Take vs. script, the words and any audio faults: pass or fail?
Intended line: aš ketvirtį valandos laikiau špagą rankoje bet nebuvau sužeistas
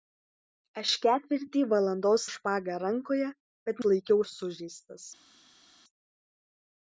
fail